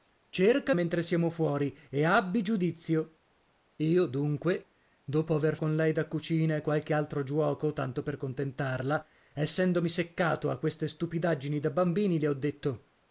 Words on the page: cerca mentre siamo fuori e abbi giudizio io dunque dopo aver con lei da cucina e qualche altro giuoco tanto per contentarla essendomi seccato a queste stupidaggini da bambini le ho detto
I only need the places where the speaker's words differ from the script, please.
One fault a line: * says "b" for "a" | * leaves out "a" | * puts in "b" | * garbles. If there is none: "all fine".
all fine